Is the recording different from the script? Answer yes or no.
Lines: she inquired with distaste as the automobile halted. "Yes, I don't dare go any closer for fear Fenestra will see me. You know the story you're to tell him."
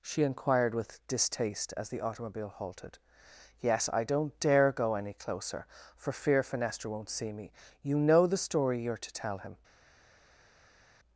yes